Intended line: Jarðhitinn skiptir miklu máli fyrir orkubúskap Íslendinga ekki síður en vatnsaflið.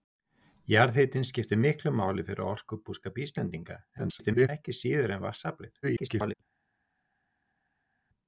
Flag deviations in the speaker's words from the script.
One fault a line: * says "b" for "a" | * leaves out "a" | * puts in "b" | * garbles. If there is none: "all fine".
* garbles
* garbles